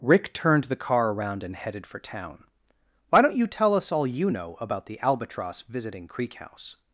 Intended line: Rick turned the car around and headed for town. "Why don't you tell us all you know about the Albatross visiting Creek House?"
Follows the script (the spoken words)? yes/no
yes